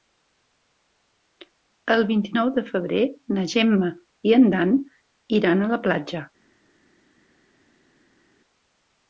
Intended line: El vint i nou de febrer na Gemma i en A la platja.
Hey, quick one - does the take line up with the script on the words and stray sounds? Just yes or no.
no